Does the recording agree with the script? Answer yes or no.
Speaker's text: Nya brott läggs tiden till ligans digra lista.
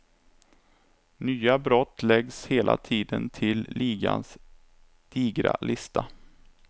no